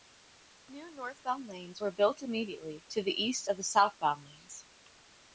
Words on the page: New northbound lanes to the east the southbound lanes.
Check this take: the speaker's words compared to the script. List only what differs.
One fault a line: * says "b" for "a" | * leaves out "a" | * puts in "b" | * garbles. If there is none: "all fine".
* puts in "were built immediately"
* puts in "of"